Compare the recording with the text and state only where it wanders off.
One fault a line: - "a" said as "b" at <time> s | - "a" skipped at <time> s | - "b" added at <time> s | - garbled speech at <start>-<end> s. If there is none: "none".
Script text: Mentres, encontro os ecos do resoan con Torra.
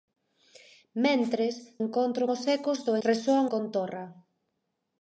none